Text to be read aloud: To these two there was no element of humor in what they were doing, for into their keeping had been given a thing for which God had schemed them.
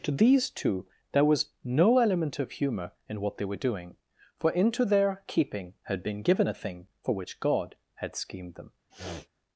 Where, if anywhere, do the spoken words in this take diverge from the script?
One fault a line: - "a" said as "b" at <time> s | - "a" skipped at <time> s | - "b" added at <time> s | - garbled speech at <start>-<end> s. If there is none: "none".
none